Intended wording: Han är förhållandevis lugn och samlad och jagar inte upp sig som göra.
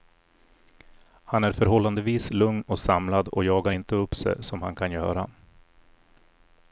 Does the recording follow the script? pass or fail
fail